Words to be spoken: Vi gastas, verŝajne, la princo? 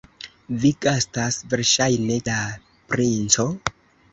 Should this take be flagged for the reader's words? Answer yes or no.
no